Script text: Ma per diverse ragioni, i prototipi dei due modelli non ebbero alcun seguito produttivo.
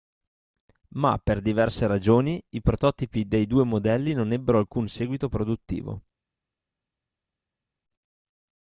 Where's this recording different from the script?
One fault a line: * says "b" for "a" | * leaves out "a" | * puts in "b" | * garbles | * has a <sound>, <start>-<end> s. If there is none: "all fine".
all fine